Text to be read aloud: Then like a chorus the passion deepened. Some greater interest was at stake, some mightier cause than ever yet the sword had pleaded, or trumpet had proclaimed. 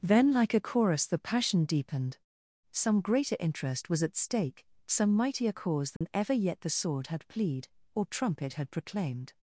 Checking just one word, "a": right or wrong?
right